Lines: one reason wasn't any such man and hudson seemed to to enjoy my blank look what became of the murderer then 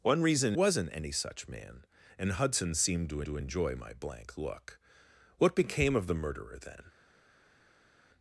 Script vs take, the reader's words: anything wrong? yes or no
no